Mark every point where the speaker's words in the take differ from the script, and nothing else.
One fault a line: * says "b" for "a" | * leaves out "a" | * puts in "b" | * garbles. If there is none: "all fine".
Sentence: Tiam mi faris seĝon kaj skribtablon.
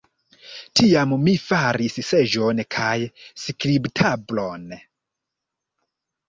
all fine